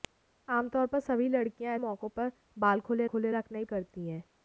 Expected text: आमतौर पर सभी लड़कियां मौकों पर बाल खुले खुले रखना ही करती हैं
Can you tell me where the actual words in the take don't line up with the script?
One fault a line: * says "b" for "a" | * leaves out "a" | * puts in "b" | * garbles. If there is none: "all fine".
all fine